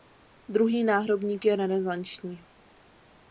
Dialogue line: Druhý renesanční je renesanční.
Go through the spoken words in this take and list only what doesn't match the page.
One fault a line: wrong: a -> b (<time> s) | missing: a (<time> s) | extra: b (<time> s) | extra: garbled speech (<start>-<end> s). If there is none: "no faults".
wrong: renesanční -> náhrobník (0.8 s)